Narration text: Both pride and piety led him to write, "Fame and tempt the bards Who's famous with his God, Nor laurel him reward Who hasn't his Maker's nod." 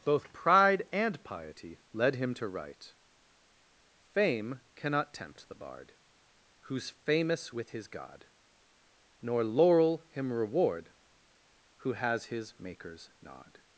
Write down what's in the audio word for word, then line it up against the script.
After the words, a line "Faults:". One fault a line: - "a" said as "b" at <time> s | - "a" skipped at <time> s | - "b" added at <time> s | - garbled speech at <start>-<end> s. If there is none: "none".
Both pride and piety led him to write, "Fame cannot tempt the bard Who's famous with his God, Nor laurel him reward Who has his Maker's nod."
Faults:
- "and" said as "cannot" at 4.8 s
- "bards" said as "bard" at 5.5 s
- "hasn't" said as "has" at 11.9 s